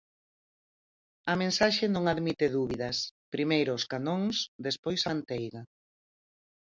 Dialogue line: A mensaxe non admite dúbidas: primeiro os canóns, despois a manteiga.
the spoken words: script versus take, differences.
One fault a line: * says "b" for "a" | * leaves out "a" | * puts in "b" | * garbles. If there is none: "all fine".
all fine